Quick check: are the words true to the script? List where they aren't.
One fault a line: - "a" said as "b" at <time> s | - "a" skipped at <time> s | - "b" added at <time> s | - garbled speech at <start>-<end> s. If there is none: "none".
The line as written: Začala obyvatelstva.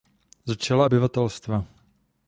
none